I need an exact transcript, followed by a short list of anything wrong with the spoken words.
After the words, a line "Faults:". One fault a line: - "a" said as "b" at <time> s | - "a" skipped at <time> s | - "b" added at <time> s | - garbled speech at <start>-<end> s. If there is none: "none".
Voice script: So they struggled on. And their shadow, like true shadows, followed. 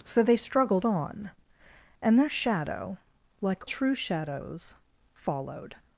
So they struggled on. And their shadow, like true shadows, followed.
Faults:
none